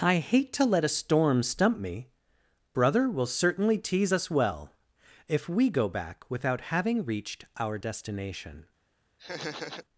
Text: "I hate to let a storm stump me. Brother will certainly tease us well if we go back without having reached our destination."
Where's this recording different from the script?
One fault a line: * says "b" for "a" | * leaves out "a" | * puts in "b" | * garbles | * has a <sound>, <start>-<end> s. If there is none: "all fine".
* has a laugh, 9.2-9.8 s